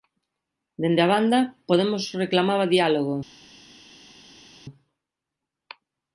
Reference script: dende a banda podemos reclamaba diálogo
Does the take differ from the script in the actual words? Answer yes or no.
no